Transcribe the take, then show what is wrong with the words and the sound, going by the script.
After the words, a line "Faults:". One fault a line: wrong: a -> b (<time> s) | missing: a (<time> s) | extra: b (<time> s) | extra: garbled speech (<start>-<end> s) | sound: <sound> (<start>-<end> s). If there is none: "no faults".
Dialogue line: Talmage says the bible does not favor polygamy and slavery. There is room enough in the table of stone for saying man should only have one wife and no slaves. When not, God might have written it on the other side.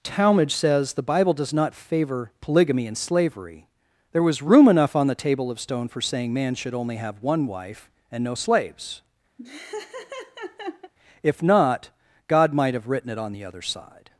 Talmage says the bible does not favor polygamy and slavery. There was room enough on the table of stone for saying man should only have one wife and no slaves. If not, God might have written it on the other side.
Faults:
wrong: is -> was (4.2 s)
wrong: in -> on (5.0 s)
sound: laugh (9.4-10.9 s)
wrong: When -> If (11.2 s)